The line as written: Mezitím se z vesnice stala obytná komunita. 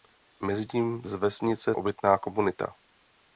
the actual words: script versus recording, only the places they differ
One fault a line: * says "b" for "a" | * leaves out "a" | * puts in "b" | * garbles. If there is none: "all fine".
* leaves out "se"
* leaves out "stala"